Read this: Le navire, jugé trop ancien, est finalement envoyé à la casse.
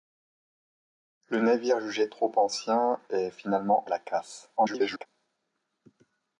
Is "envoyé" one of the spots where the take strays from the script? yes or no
yes